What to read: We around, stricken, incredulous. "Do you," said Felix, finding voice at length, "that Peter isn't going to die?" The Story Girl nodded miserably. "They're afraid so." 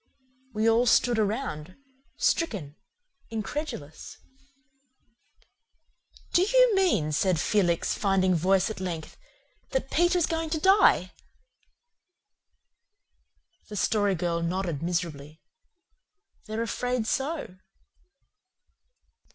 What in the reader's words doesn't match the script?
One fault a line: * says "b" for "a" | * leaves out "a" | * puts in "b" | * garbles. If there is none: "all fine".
* puts in "all stood"
* puts in "mean"
* says "is" for "isn't"